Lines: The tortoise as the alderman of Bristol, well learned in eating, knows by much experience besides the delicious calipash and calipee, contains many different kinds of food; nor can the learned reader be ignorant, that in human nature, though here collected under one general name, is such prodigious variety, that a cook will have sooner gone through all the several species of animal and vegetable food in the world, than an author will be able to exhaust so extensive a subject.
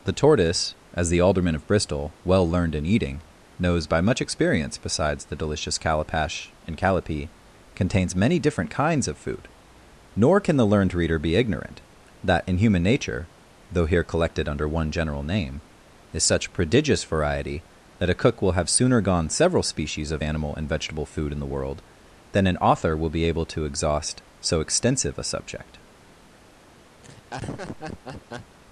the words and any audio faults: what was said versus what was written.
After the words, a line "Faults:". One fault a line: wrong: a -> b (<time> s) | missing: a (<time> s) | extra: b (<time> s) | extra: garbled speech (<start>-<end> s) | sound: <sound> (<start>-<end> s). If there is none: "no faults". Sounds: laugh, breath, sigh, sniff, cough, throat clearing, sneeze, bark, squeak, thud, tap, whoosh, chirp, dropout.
The tortoise as the alderman of Bristol, well learned in eating, knows by much experience besides the delicious calipash and calipee, contains many different kinds of food; nor can the learned reader be ignorant, that in human nature, though here collected under one general name, is such prodigious variety, that a cook will have sooner gone several species of animal and vegetable food in the world, than an author will be able to exhaust so extensive a subject.
Faults:
missing: through all the (19.3 s)
sound: laugh (27.0-28.6 s)